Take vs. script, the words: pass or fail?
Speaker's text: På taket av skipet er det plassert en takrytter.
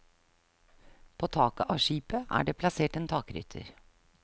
pass